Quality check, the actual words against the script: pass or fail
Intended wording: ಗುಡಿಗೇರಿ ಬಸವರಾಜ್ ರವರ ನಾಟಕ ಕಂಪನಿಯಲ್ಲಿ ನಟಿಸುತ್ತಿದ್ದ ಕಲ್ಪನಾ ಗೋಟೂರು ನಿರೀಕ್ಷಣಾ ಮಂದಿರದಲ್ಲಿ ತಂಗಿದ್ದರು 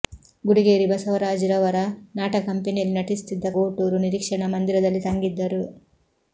fail